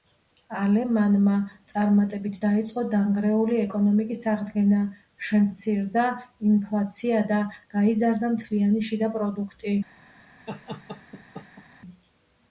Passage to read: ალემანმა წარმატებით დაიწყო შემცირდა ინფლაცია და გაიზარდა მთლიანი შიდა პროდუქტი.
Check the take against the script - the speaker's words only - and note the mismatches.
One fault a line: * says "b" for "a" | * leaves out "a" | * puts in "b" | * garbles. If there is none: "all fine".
* puts in "დანგრეული ეკონომიკის აღდგენა"